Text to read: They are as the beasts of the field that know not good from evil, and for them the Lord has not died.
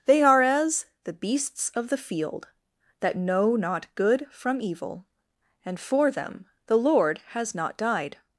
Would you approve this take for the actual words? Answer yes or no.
yes